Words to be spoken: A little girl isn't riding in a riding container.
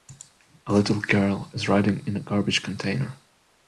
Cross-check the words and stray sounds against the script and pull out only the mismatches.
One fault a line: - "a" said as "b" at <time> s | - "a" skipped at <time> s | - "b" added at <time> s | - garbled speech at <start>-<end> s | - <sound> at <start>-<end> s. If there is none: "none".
- "isn't" said as "is" at 1.5 s
- "riding" said as "garbage" at 2.2 s